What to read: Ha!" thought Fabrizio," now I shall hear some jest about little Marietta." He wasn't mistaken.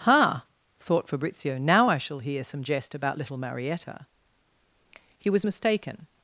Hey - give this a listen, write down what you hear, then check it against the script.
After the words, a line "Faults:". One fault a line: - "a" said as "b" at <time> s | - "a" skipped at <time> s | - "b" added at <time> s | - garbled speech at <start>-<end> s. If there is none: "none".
Ha!" thought Fabrizio," now I shall hear some jest about little Marietta." He was mistaken.
Faults:
- "wasn't" said as "was" at 5.3 s